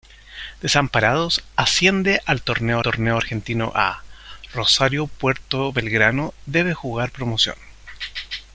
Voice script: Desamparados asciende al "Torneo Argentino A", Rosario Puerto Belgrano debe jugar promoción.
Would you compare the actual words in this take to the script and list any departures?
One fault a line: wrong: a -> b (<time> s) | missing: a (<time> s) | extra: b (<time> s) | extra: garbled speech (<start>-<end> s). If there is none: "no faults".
extra: torneo (2.8 s)